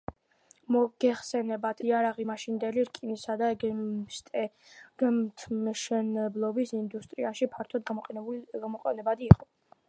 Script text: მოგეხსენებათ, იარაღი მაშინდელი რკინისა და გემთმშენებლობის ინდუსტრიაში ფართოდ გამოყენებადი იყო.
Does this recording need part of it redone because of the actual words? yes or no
no